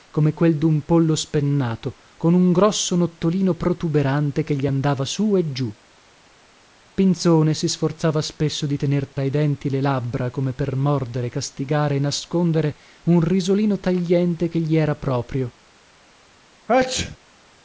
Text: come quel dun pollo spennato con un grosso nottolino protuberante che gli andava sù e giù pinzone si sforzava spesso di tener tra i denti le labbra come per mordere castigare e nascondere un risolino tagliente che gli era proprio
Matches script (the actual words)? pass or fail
pass